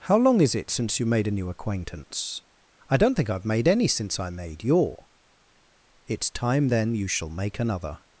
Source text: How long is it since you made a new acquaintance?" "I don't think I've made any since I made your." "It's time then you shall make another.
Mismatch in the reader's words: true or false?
false